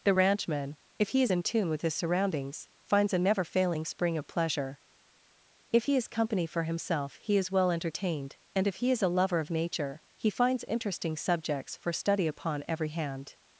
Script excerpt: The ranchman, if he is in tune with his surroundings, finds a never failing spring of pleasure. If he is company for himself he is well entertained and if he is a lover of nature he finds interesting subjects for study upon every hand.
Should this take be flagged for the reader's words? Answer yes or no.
no